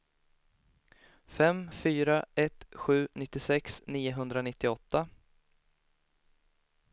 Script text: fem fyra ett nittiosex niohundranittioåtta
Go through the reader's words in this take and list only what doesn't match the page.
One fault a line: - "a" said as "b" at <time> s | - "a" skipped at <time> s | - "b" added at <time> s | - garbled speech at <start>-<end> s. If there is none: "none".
- "sju" added at 2.7 s